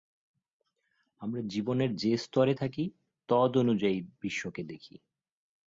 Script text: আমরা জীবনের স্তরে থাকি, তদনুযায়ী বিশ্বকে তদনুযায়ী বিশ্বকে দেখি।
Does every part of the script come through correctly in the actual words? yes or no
no